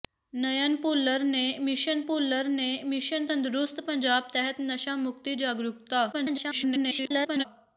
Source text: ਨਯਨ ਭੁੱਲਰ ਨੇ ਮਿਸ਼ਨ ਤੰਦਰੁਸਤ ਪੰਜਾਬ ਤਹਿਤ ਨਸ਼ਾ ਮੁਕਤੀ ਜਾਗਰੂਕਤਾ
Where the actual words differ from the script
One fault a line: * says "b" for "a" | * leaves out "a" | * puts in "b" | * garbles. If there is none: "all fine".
* puts in "ਭੁੱਲਰ ਨੇ ਮਿਸ਼ਨ"
* garbles